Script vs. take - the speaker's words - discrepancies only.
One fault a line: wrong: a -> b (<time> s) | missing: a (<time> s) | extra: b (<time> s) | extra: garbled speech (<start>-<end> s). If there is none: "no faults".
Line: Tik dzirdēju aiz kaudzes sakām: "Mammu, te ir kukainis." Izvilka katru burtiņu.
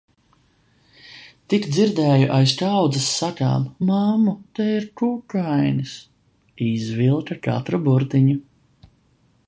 no faults